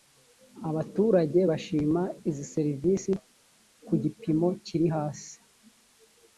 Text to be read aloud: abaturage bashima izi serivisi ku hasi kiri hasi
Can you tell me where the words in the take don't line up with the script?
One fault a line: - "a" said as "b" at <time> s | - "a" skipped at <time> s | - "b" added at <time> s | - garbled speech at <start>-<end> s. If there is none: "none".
- "hasi" said as "gipimo" at 4.0 s